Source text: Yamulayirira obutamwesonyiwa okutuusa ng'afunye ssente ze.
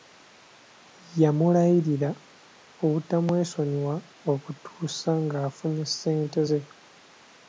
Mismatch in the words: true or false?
false